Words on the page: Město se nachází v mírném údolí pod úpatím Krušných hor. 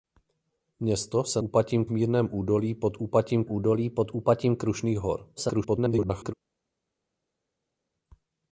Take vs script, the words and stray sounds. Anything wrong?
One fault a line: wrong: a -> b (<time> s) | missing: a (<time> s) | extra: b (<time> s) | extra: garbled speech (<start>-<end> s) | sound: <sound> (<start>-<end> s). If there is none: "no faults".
wrong: nachází -> úpatím (1.4 s)
extra: údolí pod úpatím (3.5 s)
extra: garbled speech (5.4-6.3 s)